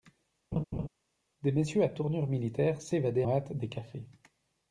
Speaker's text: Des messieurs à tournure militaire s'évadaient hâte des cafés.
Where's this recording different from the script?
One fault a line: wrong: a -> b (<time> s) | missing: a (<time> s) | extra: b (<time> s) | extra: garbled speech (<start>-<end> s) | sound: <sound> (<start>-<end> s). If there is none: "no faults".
sound: laugh (0.5-0.9 s)